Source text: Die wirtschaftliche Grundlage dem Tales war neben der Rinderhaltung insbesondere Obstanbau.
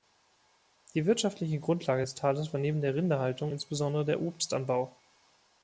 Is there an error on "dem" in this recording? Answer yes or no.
yes